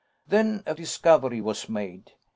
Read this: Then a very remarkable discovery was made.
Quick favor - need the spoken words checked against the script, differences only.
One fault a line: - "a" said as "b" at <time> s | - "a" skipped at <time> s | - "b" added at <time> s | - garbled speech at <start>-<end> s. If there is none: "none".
- "very remarkable" skipped at 0.7 s